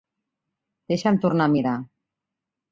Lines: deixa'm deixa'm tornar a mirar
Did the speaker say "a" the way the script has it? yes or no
yes